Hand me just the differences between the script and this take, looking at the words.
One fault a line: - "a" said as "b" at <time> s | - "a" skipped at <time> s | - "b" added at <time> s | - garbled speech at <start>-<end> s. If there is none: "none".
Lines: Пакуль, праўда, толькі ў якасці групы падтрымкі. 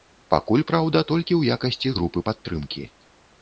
none